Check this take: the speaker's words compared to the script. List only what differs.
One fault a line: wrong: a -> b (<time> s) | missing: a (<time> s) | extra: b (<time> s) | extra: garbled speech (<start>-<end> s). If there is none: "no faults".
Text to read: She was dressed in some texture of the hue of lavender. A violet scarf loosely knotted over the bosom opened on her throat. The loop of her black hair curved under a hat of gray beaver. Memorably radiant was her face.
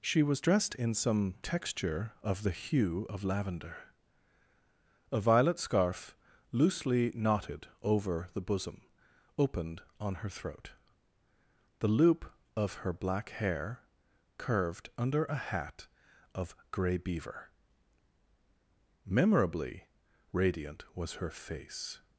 no faults